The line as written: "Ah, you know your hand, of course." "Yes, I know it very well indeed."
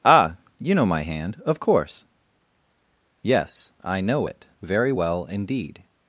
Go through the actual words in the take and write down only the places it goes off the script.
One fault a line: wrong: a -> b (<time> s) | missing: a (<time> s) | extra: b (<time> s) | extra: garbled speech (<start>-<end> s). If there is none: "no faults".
wrong: your -> my (0.9 s)